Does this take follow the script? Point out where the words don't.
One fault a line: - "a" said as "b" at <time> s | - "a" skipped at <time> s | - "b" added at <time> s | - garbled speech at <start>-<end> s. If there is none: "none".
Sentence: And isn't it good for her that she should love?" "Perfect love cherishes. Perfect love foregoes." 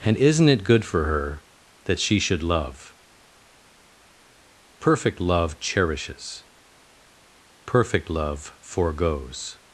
none